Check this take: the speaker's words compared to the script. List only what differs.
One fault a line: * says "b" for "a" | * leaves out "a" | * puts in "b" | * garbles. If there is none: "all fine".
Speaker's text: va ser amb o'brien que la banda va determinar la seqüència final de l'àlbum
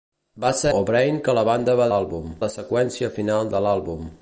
* leaves out "amb"
* says "l'àlbum" for "determinar"